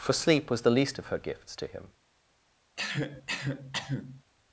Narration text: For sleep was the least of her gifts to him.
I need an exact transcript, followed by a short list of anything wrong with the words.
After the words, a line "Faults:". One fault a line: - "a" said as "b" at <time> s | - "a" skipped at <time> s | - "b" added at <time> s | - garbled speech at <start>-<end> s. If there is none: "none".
For sleep was the least of her gifts to him.
Faults:
none